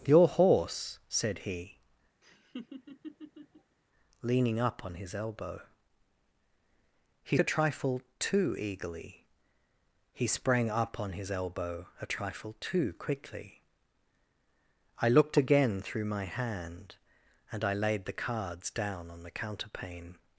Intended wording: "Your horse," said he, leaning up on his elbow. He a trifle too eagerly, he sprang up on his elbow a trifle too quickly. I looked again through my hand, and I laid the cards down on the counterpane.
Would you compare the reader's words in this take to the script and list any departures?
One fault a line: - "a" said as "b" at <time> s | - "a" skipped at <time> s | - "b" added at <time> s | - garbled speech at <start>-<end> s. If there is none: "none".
none